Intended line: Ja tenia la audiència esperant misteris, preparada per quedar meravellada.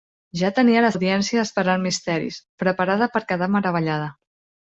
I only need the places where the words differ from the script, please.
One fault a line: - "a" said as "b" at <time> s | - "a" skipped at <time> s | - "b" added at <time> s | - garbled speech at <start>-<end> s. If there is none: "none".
none